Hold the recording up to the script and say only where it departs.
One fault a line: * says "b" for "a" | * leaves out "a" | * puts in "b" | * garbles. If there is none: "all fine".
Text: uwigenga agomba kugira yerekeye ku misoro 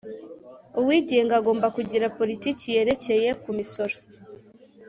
* puts in "politiki"